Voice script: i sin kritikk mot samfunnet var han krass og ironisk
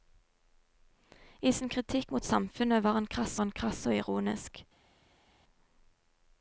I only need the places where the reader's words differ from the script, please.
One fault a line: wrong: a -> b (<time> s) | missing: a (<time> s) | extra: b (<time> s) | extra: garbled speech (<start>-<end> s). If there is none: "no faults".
extra: han krass (3.4 s)